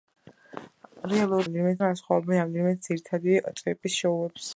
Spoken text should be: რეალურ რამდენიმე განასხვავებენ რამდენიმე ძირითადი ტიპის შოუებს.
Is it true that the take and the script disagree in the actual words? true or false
false